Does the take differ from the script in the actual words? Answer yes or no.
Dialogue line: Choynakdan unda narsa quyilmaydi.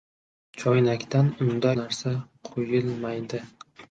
no